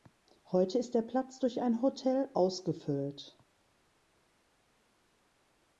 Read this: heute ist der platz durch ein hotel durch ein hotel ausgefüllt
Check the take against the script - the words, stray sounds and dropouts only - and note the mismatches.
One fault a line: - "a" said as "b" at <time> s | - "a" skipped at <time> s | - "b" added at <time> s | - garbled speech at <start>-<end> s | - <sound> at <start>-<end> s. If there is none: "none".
- "durch ein hotel" skipped at 2.3 s